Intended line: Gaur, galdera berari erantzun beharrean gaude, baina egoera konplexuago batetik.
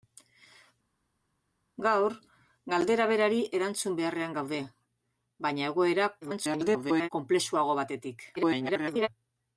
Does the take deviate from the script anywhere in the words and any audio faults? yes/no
yes